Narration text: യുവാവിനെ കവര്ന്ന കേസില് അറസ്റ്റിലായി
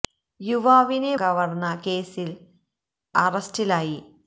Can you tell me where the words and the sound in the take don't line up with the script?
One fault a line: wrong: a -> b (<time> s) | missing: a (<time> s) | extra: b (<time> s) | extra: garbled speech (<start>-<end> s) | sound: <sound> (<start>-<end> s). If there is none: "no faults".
no faults